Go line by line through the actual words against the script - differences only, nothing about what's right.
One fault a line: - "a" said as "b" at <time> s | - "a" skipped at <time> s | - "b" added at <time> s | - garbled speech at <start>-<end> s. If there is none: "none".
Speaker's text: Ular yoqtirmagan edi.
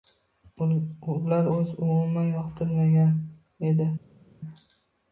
- "o‘zi umuman" added at 1.5 s